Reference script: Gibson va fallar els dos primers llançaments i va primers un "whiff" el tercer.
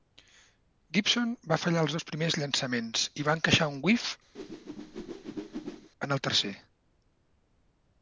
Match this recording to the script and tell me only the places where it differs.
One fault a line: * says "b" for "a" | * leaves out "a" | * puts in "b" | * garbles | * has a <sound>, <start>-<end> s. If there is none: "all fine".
* says "encaixar" for "primers"
* has a whoosh, 4.3-5.9 s
* puts in "en"